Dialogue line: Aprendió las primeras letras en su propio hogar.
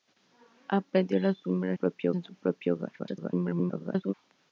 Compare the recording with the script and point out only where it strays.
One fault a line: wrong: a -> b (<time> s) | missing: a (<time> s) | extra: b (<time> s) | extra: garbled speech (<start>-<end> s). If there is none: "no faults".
wrong: letras -> propio (1.7 s)
extra: garbled speech (3.0-4.1 s)